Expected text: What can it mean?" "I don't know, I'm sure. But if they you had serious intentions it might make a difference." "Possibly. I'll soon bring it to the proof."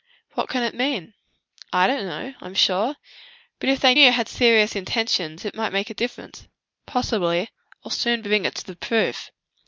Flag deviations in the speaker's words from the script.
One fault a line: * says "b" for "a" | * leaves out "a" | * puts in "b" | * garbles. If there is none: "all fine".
all fine